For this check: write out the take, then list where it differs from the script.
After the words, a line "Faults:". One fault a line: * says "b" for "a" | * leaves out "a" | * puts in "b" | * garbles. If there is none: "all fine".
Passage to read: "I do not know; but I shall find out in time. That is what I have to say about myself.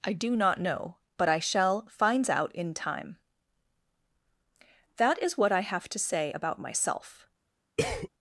"I do not know; but I shall finds out in time. That is what I have to say about myself.
Faults:
* says "finds" for "find"